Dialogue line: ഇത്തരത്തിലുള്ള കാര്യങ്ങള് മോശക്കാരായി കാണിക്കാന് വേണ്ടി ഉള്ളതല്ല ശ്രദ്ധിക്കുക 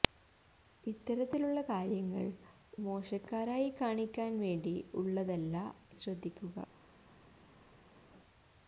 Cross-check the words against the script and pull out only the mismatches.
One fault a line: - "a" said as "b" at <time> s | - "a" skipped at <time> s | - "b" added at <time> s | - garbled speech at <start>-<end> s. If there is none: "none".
none